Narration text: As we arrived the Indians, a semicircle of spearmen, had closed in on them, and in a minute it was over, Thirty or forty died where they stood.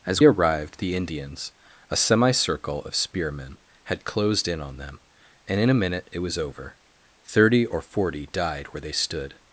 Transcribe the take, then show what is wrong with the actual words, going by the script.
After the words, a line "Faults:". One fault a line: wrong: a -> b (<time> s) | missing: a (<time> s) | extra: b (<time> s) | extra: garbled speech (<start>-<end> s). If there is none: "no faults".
As arrived the Indians, a semicircle of spearmen, had closed in on them, and in a minute it was over, Thirty or forty died where they stood.
Faults:
missing: we (0.2 s)